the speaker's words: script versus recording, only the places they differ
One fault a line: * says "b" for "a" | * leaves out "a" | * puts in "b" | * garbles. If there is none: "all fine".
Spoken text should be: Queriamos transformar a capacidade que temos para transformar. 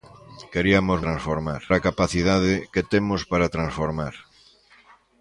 all fine